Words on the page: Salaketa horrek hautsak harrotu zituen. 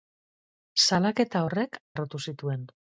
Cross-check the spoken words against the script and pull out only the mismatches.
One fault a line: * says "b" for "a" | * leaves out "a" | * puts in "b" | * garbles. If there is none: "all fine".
* leaves out "hautsak"